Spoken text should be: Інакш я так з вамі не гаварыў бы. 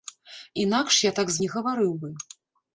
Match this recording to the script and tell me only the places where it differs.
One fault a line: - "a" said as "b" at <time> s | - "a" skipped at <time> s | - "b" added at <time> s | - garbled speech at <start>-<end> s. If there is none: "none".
- "вамі" skipped at 1.4 s